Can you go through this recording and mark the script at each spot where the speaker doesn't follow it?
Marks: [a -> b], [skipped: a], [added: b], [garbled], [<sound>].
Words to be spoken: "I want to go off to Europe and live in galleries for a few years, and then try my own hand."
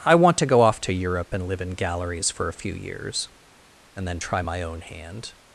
"I want to go off to Europe and live in galleries for a few years, and then try my own hand."